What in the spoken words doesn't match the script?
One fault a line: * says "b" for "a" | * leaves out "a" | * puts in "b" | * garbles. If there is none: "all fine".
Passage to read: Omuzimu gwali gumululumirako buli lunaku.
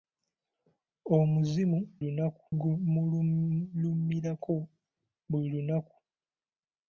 * says "lunaku" for "gwali"